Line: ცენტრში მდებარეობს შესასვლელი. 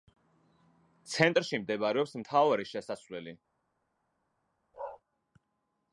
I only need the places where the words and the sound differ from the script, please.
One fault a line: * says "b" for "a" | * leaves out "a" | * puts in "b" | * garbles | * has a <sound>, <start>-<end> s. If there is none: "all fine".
* puts in "მთავარი"
* has a bark, 4.7-5.0 s